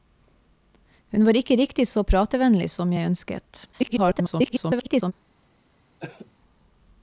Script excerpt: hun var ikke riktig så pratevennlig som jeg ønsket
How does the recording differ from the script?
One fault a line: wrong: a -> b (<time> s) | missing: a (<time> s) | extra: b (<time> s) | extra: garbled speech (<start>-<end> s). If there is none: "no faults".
extra: garbled speech (3.7-5.1 s)